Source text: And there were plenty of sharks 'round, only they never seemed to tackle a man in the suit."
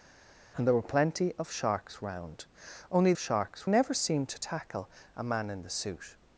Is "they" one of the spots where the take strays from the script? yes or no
yes